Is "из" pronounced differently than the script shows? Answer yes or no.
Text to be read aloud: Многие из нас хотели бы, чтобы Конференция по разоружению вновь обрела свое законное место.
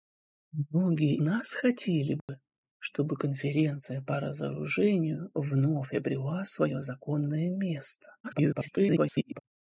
yes